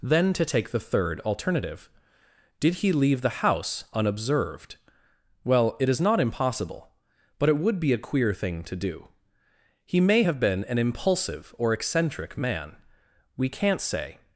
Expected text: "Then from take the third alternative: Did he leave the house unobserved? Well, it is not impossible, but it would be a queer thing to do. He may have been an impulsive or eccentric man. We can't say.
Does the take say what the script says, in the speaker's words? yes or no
no